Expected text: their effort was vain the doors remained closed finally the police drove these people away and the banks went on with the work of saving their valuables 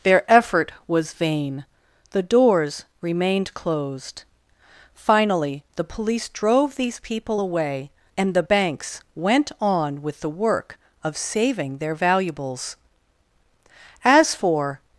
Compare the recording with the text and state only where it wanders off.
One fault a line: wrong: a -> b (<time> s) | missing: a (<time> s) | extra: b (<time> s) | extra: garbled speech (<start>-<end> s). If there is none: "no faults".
extra: as for (14.0 s)